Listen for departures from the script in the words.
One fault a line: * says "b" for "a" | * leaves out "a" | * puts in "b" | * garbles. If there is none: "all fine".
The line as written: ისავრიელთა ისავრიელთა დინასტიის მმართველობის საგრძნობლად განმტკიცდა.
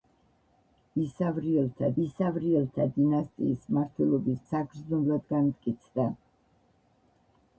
all fine